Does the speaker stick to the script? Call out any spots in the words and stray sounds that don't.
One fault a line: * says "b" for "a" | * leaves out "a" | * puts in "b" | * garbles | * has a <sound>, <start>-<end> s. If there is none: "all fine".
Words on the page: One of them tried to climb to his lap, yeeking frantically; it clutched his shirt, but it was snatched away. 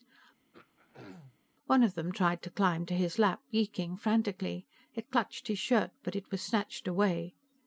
* has a throat clearing, 0.5-1.4 s